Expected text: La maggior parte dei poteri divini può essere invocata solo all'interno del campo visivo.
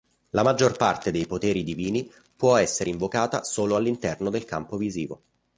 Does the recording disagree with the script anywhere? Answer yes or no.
no